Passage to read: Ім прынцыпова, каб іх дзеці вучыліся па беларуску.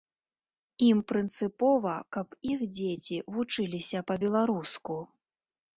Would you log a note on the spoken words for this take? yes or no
no